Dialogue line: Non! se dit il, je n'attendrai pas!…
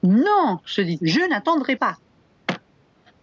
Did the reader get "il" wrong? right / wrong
wrong